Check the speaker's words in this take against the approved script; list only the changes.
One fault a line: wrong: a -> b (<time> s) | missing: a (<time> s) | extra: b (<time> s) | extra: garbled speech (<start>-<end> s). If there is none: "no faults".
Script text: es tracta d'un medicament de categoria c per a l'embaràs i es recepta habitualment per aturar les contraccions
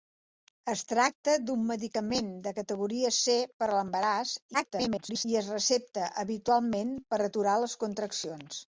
extra: garbled speech (4.5-5.3 s)